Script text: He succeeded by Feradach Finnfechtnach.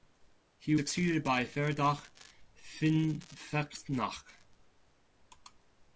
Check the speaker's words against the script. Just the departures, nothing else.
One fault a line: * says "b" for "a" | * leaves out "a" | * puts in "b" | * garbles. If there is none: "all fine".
all fine